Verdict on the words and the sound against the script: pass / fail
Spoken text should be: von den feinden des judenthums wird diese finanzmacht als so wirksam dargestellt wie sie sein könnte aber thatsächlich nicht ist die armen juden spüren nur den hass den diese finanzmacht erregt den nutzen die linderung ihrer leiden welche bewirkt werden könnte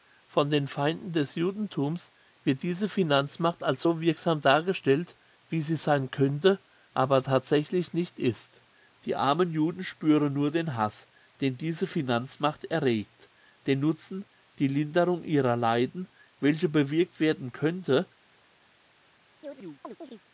fail